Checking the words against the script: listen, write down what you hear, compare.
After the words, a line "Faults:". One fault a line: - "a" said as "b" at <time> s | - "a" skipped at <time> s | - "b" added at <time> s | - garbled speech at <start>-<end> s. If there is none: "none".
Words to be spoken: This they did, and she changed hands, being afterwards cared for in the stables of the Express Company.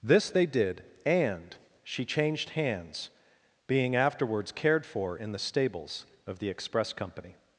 This they did, and she changed hands, being afterwards cared for in the stables of the Express Company.
Faults:
none